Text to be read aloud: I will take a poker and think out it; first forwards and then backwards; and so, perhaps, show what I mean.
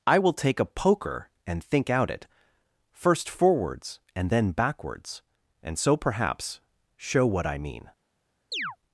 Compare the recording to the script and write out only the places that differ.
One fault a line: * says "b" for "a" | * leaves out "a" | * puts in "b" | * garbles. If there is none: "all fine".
all fine